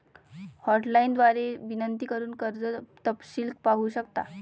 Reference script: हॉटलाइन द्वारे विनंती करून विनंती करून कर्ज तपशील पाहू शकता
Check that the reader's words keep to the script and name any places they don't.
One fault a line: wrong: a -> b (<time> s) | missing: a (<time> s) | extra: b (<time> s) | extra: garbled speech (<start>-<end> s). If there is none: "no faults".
missing: विनंती करून (2.3 s)